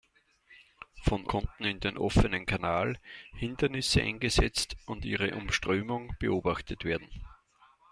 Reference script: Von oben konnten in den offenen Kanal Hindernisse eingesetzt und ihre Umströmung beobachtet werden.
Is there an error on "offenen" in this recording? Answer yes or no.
no